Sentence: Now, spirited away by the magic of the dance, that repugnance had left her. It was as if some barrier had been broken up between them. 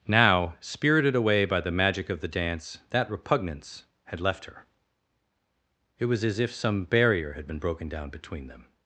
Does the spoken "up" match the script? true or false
false